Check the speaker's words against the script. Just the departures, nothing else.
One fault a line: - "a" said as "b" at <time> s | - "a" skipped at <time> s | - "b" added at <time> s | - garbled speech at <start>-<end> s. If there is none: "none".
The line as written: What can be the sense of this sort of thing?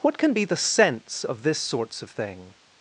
- "sort" said as "sorts" at 1.6 s